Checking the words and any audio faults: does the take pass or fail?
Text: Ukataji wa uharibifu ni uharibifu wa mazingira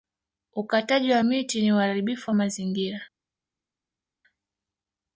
fail